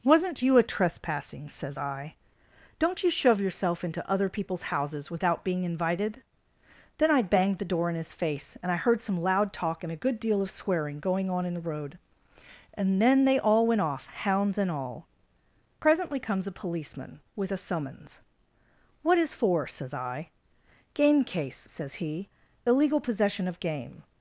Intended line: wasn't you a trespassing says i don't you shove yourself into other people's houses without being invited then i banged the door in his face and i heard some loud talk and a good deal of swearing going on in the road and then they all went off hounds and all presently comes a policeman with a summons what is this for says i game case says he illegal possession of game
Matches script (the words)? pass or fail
fail